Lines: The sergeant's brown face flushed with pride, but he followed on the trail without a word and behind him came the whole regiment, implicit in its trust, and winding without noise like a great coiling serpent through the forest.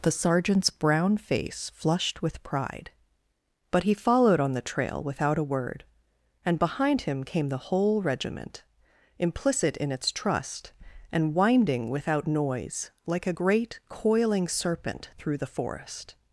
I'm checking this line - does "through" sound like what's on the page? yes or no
yes